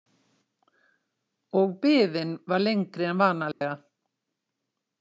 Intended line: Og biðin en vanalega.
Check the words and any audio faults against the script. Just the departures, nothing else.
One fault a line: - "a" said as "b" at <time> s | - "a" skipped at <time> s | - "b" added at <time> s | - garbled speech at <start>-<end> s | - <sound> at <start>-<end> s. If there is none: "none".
- "var lengri" added at 2.5 s
- dropout at 3.5-3.6 s